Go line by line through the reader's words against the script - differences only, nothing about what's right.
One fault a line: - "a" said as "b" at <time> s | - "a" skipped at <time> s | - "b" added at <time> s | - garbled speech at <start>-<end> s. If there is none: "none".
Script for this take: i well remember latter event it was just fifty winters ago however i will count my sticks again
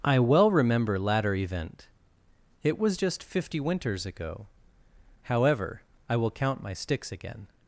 none